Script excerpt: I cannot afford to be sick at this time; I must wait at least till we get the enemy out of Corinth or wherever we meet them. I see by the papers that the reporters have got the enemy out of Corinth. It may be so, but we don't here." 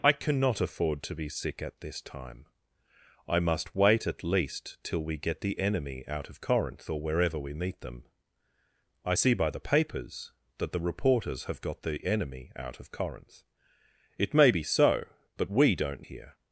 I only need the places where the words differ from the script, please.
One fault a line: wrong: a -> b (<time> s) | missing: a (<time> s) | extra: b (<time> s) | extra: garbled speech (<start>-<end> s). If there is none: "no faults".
no faults